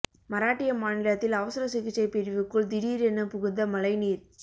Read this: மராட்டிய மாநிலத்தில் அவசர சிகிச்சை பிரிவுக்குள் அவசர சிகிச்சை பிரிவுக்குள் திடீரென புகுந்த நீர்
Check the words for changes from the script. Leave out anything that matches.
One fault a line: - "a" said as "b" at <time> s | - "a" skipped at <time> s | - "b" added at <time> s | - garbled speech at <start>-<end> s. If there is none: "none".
- "அவசர சிகிச்சை பிரிவுக்குள்" skipped at 2.7 s
- "மழை" added at 3.7 s